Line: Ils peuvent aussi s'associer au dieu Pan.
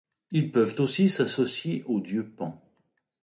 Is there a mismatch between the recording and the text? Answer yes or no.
no